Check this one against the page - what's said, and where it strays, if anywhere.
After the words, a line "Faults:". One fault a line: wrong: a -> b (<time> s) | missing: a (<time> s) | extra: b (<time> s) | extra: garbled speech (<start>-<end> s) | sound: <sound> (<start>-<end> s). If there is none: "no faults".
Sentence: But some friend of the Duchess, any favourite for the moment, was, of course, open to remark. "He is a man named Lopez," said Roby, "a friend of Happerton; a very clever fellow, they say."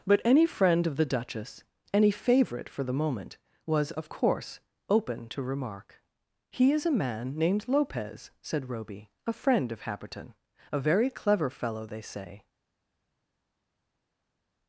But any friend of the Duchess, any favourite for the moment, was, of course, open to remark. "He is a man named Lopez," said Roby, "a friend of Happerton; a very clever fellow, they say."
Faults:
wrong: some -> any (0.2 s)